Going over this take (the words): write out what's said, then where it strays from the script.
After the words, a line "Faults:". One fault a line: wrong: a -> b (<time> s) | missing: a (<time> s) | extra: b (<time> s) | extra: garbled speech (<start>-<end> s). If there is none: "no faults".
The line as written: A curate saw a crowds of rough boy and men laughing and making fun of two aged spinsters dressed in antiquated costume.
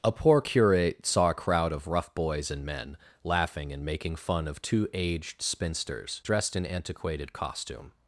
A poor curate saw a crowd of rough boys and men laughing and making fun of two aged spinsters dressed in antiquated costume.
Faults:
extra: poor (0.1 s)
wrong: crowds -> crowd (1.3 s)
wrong: boy -> boys (2.1 s)